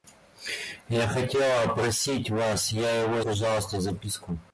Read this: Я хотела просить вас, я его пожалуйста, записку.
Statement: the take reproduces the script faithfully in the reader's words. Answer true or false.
true